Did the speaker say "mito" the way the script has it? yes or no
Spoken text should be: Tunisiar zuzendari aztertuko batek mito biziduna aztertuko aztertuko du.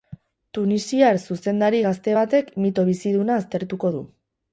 yes